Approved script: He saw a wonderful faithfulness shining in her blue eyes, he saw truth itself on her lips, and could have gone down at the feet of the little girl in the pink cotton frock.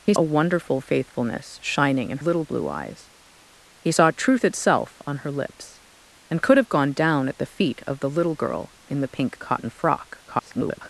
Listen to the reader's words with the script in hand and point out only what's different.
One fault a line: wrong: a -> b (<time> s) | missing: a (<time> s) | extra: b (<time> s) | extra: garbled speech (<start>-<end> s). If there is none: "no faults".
missing: saw (0.1 s)
wrong: her -> little (2.2 s)
extra: garbled speech (10.3-10.9 s)